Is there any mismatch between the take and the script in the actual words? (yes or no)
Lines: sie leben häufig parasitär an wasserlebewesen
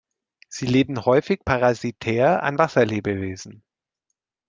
no